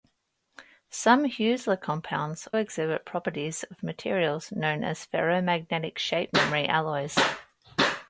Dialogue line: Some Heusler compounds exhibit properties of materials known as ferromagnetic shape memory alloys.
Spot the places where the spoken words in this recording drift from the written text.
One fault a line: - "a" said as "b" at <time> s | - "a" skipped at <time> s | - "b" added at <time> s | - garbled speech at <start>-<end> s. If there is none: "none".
none